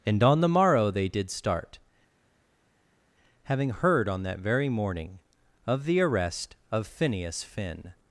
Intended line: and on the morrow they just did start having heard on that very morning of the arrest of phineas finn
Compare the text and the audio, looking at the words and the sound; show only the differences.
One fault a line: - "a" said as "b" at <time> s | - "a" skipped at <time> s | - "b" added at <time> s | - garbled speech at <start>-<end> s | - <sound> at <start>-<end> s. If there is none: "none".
- "just" skipped at 1.1 s